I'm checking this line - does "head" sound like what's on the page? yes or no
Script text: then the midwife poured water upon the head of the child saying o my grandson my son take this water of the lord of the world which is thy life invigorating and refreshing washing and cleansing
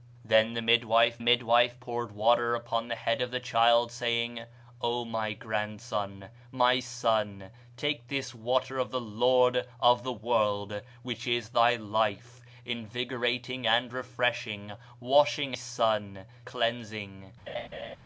yes